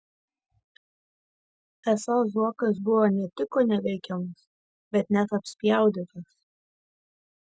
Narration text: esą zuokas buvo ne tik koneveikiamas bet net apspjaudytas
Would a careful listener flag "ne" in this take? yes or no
no